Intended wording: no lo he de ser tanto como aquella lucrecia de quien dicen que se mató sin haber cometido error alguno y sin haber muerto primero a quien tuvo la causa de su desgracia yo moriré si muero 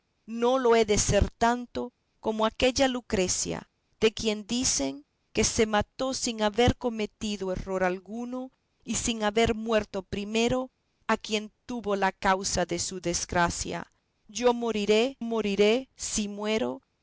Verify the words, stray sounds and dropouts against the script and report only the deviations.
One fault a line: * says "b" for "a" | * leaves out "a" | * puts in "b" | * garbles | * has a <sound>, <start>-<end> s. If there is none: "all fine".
* puts in "moriré"